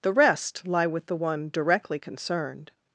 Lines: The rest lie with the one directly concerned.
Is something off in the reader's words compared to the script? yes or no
no